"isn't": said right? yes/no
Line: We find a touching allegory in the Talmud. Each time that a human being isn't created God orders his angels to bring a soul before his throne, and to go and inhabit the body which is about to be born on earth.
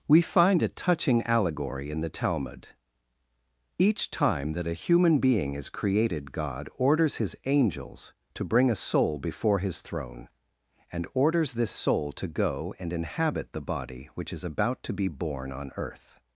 no